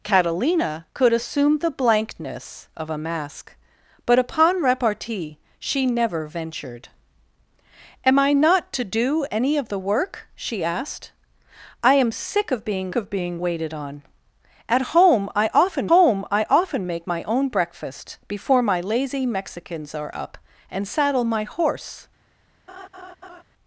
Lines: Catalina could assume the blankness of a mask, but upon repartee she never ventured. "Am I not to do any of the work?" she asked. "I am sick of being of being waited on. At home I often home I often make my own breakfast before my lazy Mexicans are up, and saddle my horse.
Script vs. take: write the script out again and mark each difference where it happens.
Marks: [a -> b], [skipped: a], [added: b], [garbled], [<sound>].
Catalina could assume the blankness of a mask, but upon repartee she never ventured. "Am I not to do any of the work?" she asked. "I am sick of being of being waited on. At home I often home I often make my own breakfast before my lazy Mexicans are up, and saddle my horse. [laugh]